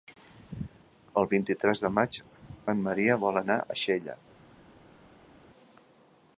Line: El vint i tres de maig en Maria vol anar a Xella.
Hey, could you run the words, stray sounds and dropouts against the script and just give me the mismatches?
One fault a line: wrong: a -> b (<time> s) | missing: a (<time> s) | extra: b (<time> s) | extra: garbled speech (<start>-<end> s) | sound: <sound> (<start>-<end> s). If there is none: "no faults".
no faults